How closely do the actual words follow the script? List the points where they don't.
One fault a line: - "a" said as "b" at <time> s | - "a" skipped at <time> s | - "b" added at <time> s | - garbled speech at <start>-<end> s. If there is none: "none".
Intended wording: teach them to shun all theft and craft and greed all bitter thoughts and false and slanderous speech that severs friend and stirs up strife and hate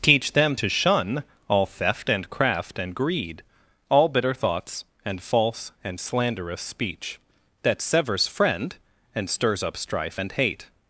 none